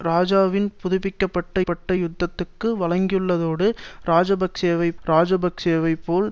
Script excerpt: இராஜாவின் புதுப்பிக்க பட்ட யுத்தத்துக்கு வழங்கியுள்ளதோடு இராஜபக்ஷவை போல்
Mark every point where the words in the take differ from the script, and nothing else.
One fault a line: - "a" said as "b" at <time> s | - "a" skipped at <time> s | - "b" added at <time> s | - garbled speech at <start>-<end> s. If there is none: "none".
- "பட்ட" added at 1.6 s
- "இராஜபக்ஷவை" added at 5.1 s